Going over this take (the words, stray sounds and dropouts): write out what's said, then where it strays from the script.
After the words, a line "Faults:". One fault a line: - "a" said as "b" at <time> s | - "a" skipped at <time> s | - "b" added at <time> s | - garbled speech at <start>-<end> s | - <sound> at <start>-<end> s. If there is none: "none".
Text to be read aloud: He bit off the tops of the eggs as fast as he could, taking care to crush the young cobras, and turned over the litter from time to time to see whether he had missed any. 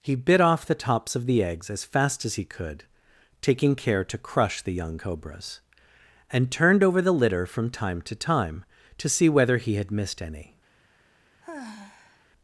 He bit off the tops of the eggs as fast as he could, taking care to crush the young cobras, and turned over the litter from time to time to see whether he had missed any.
Faults:
- sigh at 11.4-12.3 s